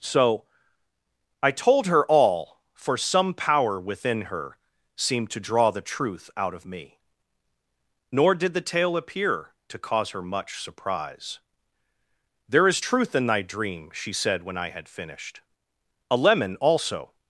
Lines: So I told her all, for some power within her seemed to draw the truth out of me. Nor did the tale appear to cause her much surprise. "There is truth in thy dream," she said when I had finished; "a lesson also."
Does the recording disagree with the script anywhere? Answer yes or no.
yes